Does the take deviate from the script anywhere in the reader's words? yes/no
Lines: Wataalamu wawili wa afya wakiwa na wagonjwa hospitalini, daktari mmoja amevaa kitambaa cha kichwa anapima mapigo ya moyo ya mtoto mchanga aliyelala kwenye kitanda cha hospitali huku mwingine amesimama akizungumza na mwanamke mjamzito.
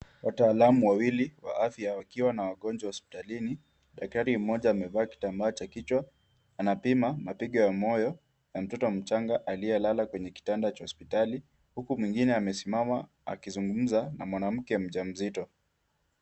no